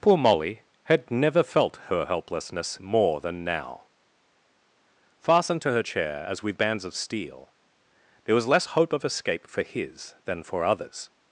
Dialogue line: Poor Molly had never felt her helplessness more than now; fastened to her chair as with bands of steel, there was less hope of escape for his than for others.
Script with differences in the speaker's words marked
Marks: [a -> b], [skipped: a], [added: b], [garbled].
Poor Molly had never felt her helplessness more than now; fastened to her chair as with bands of steel, there was less hope of escape for his than for others.